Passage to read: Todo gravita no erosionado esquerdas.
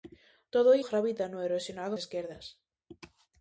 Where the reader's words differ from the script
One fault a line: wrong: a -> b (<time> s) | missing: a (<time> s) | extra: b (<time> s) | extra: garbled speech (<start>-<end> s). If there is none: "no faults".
no faults